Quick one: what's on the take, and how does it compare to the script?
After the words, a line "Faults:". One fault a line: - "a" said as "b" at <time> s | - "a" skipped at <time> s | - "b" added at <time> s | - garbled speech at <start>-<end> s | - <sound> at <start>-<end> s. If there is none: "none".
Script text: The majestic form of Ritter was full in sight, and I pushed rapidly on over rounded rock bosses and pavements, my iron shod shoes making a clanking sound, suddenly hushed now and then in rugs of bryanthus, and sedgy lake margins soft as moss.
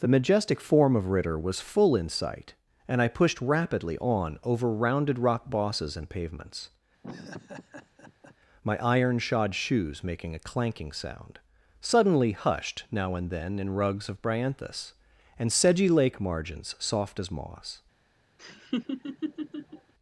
The majestic form of Ritter was full in sight, and I pushed rapidly on over rounded rock bosses and pavements, my iron shod shoes making a clanking sound, suddenly hushed now and then in rugs of bryanthus, and sedgy lake margins soft as moss.
Faults:
- laugh at 7.0-8.4 s
- laugh at 18.4-19.9 s